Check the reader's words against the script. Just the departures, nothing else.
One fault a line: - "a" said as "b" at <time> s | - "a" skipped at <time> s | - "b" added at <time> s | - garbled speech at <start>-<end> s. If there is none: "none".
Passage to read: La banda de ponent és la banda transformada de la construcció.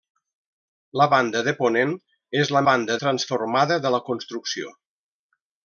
none